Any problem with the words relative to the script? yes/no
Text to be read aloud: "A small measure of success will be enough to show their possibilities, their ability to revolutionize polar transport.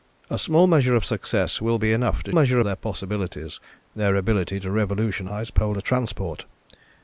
yes